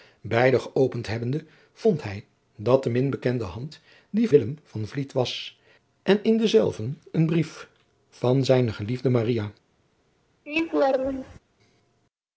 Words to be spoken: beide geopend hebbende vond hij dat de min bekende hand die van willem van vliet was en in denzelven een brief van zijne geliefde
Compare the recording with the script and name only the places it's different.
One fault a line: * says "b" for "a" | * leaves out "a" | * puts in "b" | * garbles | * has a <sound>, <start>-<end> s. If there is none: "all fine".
* leaves out "van"
* has a laugh, 10.5-11.4 s